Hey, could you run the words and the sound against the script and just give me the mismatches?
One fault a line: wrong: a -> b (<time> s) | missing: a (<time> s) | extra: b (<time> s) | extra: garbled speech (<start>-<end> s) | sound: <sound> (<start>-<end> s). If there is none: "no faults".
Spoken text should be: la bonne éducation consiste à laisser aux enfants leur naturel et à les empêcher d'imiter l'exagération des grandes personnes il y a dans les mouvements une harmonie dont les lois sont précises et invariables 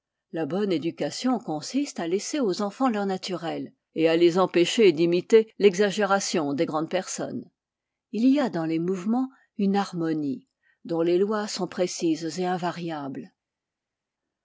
no faults